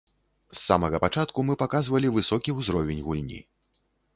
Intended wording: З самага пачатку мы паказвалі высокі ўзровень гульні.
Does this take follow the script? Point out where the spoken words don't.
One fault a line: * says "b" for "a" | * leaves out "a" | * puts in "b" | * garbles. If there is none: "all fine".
all fine